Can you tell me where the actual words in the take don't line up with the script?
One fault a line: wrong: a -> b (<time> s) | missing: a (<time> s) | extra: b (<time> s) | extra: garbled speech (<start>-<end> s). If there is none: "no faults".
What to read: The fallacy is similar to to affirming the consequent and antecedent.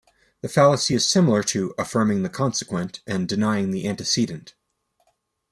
missing: to (1.7 s)
extra: denying the (3.3 s)